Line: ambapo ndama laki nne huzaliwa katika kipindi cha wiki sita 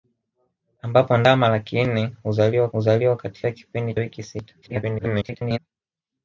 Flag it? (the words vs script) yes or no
yes